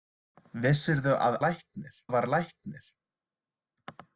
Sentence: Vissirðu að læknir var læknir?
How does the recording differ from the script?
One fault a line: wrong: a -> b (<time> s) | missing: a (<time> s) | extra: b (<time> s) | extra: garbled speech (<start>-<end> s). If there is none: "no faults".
no faults